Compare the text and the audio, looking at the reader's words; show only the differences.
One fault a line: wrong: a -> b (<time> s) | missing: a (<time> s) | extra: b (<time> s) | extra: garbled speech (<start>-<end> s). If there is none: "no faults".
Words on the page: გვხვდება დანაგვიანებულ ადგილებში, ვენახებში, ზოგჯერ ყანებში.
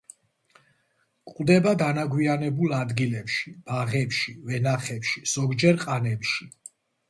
extra: ბაღებში (3.7 s)